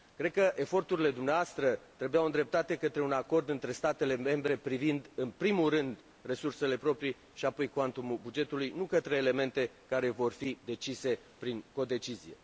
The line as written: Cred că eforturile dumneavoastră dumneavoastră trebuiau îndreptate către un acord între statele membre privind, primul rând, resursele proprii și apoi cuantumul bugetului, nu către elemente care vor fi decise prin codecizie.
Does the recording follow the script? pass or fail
fail